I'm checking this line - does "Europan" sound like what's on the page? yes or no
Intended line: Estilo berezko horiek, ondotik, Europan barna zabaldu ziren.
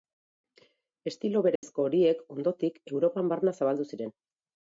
yes